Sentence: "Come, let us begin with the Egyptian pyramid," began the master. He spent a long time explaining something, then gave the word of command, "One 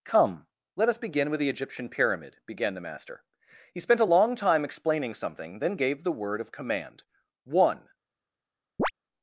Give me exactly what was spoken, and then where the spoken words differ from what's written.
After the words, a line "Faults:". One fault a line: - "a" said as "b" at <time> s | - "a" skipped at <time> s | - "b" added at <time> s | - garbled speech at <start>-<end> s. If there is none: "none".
"Come, let us begin with the Egyptian pyramid," began the master. He spent a long time explaining something, then gave the word of command, "One
Faults:
none